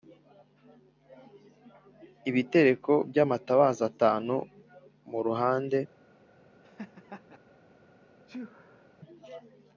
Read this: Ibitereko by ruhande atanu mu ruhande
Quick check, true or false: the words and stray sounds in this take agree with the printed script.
false